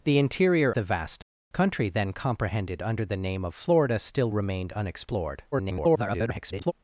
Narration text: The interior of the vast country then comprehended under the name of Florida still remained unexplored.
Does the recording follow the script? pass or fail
fail